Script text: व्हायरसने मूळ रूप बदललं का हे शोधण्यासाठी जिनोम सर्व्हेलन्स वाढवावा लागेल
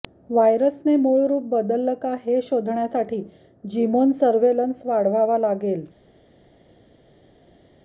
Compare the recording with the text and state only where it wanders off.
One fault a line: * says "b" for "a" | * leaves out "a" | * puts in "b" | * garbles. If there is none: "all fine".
all fine